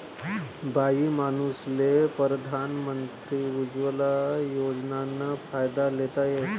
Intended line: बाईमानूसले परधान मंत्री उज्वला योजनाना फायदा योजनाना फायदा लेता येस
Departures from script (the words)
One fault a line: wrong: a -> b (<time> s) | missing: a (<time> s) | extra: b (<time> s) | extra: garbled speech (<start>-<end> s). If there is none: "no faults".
missing: योजनाना फायदा (5.9 s)